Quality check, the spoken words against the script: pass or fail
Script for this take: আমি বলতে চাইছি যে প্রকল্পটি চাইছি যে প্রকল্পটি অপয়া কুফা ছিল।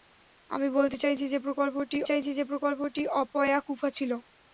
pass